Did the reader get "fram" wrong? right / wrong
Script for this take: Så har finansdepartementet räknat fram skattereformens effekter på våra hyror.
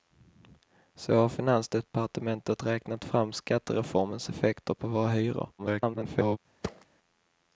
right